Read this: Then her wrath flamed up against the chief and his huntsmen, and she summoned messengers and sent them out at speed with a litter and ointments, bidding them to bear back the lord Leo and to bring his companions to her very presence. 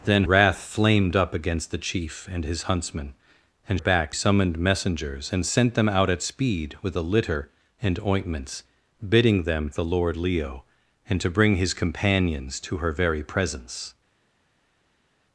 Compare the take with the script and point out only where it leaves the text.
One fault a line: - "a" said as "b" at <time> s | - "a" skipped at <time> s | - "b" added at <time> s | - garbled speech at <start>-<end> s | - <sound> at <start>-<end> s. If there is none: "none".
- "her" skipped at 0.2 s
- "she" said as "back" at 3.8 s
- "to bear back" skipped at 9.7 s